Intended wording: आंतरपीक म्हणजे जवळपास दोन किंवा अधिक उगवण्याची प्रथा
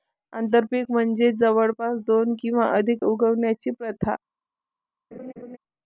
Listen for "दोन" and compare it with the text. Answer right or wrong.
right